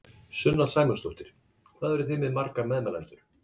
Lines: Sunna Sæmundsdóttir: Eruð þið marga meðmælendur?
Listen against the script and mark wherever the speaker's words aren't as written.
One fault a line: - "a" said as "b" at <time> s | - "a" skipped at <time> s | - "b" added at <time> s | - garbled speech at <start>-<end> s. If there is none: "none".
- "Hvað" added at 1.8 s
- "með" added at 2.3 s